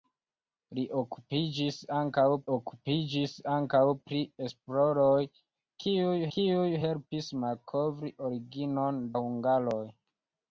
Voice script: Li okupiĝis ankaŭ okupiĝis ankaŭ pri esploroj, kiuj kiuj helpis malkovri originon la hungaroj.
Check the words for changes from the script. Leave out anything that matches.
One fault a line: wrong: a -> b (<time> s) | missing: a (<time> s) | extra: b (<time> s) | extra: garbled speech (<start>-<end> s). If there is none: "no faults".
no faults